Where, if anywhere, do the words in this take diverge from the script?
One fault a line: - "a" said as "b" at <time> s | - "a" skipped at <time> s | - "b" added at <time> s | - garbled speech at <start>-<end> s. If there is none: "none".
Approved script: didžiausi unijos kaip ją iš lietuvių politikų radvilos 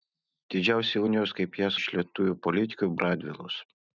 none